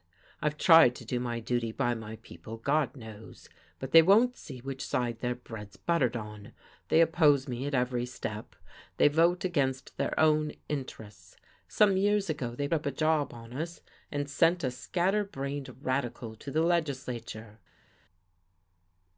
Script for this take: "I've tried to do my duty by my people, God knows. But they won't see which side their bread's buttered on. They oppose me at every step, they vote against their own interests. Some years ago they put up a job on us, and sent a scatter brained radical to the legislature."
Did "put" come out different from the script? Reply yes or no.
yes